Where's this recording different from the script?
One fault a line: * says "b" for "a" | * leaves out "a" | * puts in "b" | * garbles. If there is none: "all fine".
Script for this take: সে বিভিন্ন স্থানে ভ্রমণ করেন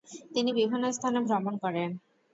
* says "তিনি" for "সে"